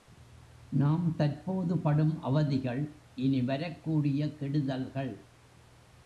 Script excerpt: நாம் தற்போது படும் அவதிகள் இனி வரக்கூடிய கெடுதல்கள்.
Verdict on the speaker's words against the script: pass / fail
pass